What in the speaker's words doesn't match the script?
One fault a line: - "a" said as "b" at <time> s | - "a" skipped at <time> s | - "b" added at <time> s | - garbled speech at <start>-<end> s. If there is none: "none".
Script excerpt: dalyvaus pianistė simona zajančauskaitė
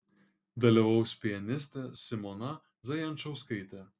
none